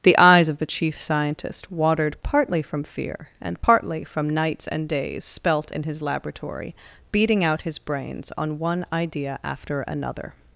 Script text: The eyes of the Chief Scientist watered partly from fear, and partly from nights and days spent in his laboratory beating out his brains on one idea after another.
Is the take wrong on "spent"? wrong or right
wrong